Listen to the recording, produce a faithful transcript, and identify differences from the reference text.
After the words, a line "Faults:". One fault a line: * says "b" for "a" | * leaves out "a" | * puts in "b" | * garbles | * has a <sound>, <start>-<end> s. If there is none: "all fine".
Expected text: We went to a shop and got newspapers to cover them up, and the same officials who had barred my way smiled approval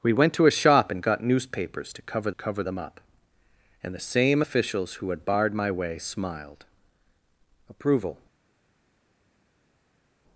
We went to a shop and got newspapers to cover cover them up, and the same officials who had barred my way smiled approval
Faults:
* puts in "cover"